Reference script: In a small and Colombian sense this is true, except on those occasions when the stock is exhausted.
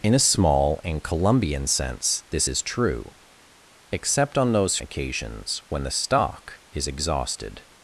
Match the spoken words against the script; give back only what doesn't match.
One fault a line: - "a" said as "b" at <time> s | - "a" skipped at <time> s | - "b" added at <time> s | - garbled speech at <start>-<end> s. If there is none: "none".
none